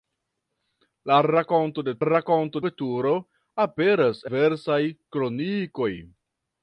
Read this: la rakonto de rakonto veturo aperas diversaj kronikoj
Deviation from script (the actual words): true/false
false